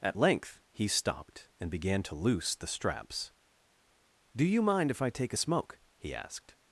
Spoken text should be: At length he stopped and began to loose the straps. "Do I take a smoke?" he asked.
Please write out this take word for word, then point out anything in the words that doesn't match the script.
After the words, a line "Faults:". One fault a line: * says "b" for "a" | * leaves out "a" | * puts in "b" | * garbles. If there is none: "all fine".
At length he stopped and began to loose the straps. "Do you mind if I take a smoke?" he asked.
Faults:
* puts in "you mind if"